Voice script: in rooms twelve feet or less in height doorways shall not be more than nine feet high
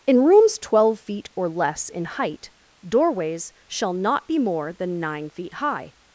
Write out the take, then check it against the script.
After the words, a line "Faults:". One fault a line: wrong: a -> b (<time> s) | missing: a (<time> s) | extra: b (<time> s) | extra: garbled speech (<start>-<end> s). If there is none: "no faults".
in rooms twelve feet or less in height doorways shall not be more than nine feet high
Faults:
no faults